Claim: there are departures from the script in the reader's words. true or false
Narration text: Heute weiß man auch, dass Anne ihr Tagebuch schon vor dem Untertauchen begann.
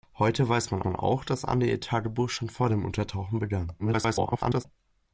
true